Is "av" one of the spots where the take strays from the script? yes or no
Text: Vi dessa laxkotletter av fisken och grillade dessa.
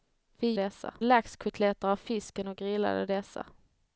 no